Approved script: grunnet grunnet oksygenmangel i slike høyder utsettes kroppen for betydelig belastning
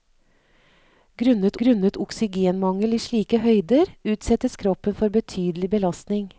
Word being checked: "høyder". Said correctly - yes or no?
yes